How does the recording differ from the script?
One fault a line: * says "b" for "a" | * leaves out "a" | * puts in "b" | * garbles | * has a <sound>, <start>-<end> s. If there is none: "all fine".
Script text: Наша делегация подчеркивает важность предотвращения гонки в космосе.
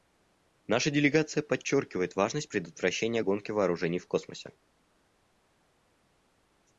* puts in "вооружений"